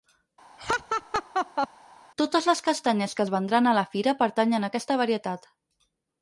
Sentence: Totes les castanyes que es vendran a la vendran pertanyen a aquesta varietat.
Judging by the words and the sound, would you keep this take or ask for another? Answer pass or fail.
fail